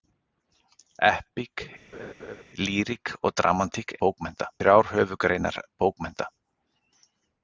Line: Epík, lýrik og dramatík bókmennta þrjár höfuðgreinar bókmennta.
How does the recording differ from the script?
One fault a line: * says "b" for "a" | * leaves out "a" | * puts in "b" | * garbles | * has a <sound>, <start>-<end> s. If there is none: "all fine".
* has a laugh, 1.9-2.4 s